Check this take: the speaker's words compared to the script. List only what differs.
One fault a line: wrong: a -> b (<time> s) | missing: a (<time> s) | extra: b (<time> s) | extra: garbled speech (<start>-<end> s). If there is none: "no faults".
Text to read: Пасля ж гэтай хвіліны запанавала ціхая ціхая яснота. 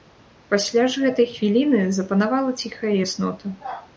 missing: ціхая (3.0 s)